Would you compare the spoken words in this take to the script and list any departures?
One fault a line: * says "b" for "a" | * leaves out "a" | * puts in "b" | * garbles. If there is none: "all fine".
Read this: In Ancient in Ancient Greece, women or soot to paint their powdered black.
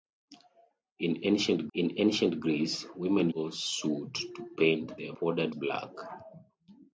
all fine